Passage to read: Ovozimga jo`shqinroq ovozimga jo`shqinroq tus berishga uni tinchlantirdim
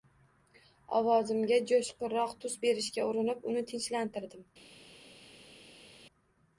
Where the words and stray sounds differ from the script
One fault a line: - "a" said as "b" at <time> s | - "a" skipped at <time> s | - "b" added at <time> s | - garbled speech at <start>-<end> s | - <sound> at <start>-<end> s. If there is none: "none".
- "ovozimga jo`shqinroq" skipped at 2.4 s
- "urinib" added at 3.1 s